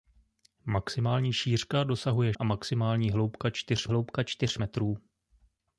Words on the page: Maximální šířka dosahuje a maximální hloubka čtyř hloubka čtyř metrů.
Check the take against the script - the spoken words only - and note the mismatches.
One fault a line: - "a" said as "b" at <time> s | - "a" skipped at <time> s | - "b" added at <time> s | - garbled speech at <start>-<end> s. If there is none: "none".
none